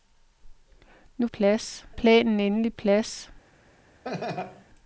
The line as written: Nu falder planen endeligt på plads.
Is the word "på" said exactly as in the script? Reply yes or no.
no